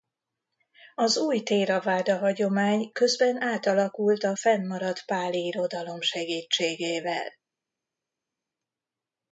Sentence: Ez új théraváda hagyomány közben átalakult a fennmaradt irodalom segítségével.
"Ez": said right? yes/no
no